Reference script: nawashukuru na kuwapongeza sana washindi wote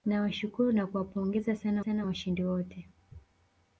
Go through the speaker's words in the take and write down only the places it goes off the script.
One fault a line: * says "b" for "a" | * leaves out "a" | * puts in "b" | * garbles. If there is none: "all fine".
* puts in "sana"